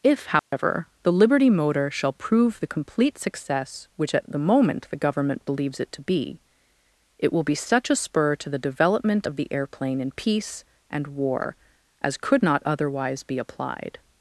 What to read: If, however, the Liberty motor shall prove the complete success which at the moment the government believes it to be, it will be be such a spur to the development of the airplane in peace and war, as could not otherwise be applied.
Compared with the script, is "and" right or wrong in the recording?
right